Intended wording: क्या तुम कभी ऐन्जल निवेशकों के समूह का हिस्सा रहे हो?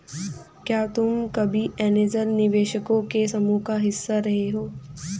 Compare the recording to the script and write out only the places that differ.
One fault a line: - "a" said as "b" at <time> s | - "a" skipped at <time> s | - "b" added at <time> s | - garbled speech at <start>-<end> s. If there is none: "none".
none